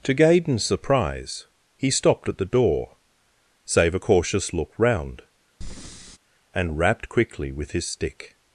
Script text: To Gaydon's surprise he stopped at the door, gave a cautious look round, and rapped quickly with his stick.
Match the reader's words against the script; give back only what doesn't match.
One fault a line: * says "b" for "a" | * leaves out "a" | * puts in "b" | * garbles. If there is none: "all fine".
* says "save" for "gave"